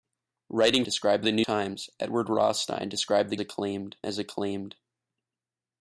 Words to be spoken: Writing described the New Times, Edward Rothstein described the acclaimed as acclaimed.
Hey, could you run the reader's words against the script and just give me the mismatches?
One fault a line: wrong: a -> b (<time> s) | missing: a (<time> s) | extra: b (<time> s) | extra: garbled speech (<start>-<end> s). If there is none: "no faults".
no faults